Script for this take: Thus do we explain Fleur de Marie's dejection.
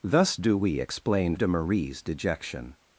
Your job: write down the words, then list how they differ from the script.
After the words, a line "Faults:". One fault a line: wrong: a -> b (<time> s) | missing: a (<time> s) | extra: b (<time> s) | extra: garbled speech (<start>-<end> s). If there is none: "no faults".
Thus do we explain De Marie's dejection.
Faults:
missing: Fleur (1.4 s)